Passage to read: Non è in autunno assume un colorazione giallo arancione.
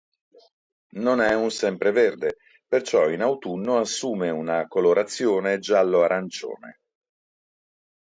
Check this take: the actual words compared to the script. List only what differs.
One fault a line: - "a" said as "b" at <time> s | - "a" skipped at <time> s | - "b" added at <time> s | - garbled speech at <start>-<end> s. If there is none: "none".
- "un sempreverde perciò" added at 1.4 s
- "un" said as "una" at 4.3 s